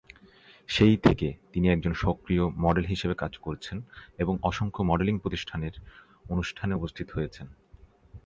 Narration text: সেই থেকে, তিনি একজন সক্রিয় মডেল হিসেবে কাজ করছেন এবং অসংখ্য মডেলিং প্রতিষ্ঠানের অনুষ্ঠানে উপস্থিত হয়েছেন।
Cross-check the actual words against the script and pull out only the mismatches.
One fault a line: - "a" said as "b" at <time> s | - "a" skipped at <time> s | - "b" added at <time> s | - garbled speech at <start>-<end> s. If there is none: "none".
none